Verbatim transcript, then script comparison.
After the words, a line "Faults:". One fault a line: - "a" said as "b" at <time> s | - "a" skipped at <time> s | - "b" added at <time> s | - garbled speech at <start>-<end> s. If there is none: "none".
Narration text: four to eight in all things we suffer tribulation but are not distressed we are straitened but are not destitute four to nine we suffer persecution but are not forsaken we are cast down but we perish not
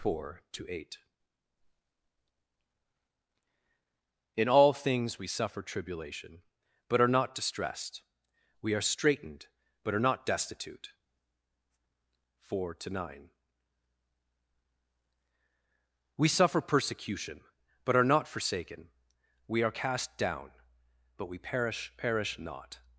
four to eight in all things we suffer tribulation but are not distressed we are straitened but are not destitute four to nine we suffer persecution but are not forsaken we are cast down but we perish perish not
Faults:
- "perish" added at 22.0 s